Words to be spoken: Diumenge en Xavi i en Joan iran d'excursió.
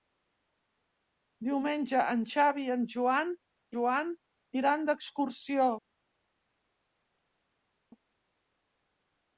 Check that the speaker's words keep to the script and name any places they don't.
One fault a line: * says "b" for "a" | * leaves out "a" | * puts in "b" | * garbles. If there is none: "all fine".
* puts in "Joan"